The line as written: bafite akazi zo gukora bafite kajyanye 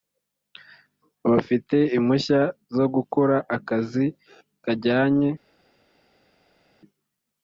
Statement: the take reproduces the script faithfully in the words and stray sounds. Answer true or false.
false